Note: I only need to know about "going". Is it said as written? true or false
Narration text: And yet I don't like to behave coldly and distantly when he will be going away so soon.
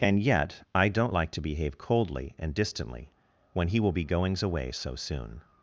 false